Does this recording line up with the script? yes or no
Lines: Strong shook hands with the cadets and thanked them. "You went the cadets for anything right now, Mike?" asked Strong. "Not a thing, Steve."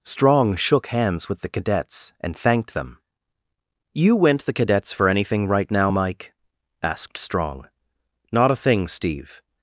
yes